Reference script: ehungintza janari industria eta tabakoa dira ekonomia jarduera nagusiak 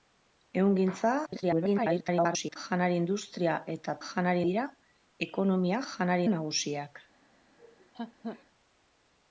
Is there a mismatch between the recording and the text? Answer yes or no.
yes